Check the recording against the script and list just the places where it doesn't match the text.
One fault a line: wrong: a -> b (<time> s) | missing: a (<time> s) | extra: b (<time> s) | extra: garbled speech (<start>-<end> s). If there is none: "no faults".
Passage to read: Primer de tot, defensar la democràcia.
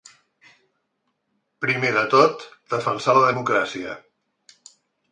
no faults